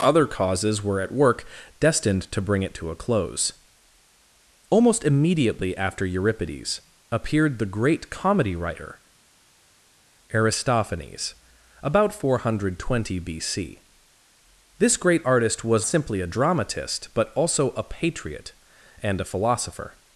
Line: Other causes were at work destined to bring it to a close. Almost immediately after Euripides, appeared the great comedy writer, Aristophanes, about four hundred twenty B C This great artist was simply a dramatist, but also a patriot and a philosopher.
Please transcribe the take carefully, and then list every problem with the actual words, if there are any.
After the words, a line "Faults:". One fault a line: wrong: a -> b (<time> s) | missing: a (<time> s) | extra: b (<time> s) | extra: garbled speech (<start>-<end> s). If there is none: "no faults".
Other causes were at work destined to bring it to a close. Almost immediately after Euripides, appeared the great comedy writer, Aristophanes, about four hundred twenty B C This great artist was simply a dramatist, but also a patriot and a philosopher.
Faults:
no faults